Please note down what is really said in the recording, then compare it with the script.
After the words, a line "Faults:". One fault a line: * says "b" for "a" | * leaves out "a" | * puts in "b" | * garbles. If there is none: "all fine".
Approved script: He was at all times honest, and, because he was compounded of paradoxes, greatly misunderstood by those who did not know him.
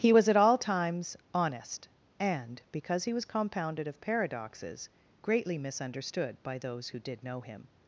He was at all times honest, and, because he was compounded of paradoxes, greatly misunderstood by those who did know him.
Faults:
* leaves out "not"